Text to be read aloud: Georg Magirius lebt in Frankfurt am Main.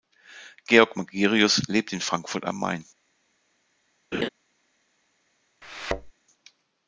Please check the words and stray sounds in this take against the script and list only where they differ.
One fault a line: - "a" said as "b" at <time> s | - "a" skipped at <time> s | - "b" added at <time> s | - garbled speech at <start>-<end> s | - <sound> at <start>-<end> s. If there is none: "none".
- laugh at 4.1-4.3 s
- thud at 5.6-6.1 s